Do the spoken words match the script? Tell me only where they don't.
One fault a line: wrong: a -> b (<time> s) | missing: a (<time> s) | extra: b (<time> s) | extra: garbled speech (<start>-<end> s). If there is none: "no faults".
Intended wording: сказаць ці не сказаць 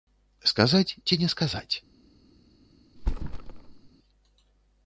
no faults